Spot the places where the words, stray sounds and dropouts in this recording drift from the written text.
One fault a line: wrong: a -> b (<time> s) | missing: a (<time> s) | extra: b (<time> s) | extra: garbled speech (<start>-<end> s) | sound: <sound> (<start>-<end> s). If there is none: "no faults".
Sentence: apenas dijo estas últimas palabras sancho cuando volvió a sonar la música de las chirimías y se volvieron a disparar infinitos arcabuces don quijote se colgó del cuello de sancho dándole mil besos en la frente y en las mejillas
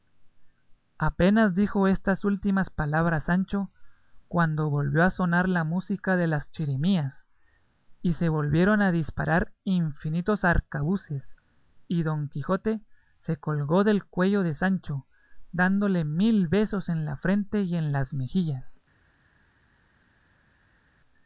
extra: y (11.9 s)